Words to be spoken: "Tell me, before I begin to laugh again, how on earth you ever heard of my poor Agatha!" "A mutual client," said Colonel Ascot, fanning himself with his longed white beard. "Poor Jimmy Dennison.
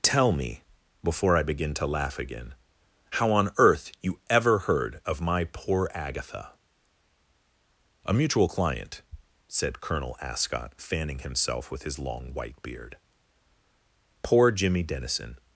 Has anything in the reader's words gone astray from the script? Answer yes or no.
yes